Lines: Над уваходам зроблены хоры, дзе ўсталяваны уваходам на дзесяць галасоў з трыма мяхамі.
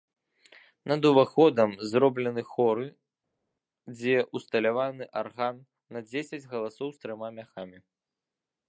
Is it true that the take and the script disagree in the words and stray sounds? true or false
true